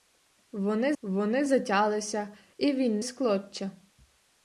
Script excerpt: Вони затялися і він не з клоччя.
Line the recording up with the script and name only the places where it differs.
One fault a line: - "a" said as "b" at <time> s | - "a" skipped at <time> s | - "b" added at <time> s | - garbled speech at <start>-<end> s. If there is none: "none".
- "вони" added at 1.0 s
- "не" skipped at 3.0 s